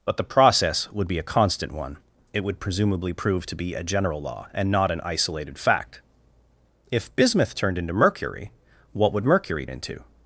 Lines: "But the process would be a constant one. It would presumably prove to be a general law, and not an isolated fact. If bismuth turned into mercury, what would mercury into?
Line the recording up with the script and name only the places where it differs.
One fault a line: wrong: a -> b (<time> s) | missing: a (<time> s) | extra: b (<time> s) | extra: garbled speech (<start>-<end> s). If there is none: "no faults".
no faults